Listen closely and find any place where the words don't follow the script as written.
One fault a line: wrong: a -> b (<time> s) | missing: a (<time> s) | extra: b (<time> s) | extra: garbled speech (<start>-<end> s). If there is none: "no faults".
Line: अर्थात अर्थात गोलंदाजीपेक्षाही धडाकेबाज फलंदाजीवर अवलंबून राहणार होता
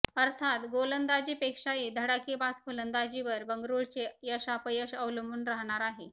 missing: अर्थात (0.6 s)
extra: बंगळुरूचे यशापयश (3.5 s)
wrong: होता -> आहे (5.8 s)